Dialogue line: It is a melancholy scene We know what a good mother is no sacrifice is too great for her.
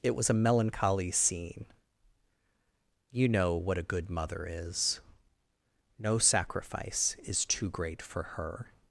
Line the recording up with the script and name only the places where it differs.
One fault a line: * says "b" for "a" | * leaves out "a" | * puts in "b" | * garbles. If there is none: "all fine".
* says "was" for "is"
* says "You" for "We"